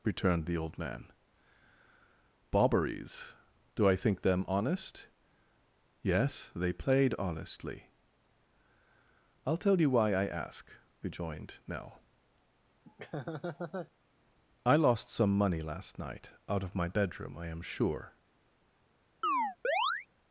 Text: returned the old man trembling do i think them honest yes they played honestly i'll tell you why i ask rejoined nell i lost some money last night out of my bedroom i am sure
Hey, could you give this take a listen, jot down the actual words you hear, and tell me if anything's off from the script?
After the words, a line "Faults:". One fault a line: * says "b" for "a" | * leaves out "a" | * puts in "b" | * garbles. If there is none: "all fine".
returned the old man bobberies do i think them honest yes they played honestly i'll tell you why i ask rejoined nell i lost some money last night out of my bedroom i am sure
Faults:
* says "bobberies" for "trembling"